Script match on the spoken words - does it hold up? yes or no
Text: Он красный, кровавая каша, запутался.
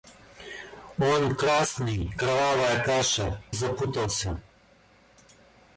yes